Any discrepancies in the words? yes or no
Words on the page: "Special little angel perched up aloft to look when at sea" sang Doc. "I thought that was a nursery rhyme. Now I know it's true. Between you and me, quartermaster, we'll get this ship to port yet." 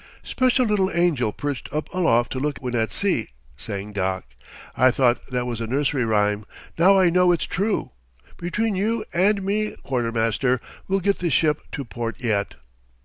no